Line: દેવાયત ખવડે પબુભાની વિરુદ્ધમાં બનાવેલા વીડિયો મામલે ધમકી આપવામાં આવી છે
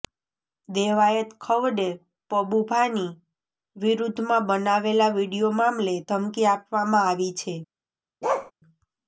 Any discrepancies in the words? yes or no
no